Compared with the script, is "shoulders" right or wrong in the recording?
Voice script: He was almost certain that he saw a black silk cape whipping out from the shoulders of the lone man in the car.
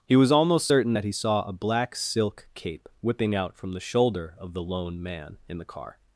wrong